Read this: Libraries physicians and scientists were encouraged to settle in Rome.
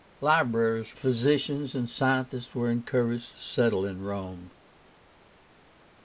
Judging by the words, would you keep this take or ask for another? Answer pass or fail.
pass